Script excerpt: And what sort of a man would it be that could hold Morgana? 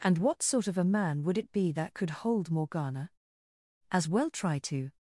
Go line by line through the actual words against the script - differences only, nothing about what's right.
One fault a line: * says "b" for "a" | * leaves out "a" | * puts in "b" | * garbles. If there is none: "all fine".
* puts in "As well try to"